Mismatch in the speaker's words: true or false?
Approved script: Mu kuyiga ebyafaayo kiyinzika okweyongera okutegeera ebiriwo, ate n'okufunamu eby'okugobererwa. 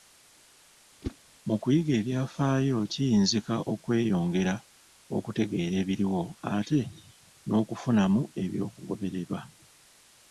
false